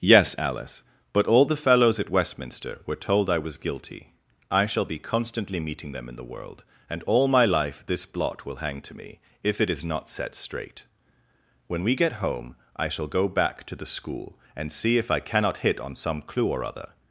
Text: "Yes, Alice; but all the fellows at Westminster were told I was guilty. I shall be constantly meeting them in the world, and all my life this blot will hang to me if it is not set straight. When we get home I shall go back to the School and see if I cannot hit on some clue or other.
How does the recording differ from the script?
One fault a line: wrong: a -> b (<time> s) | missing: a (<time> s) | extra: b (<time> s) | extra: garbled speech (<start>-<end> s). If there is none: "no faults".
no faults